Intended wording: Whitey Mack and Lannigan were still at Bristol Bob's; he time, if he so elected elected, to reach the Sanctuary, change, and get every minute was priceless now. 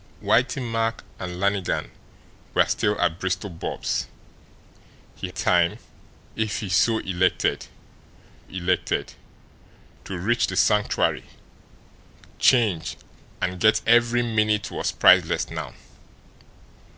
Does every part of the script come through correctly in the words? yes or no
yes